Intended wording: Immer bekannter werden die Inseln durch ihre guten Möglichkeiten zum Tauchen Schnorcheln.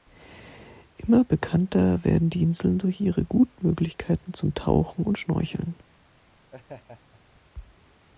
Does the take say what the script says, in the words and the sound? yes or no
no